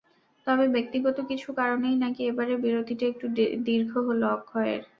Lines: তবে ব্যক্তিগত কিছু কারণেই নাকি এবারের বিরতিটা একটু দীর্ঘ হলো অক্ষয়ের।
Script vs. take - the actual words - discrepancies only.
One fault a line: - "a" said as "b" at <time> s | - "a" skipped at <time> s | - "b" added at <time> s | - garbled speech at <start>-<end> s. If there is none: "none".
none